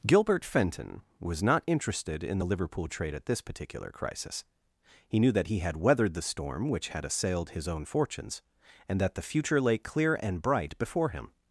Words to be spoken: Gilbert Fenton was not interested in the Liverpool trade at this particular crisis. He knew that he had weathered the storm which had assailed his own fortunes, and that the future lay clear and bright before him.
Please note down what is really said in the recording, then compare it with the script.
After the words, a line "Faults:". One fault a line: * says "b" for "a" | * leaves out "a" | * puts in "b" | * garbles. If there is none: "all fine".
Gilbert Fenton was not interested in the Liverpool trade at this particular crisis. He knew that he had weathered the storm which had assailed his own fortunes, and that the future lay clear and bright before him.
Faults:
all fine